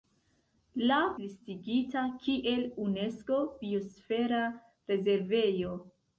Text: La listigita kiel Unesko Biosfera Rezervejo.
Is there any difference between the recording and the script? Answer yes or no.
no